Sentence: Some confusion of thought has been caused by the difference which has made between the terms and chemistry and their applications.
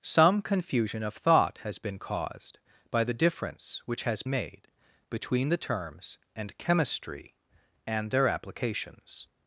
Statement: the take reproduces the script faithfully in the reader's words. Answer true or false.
true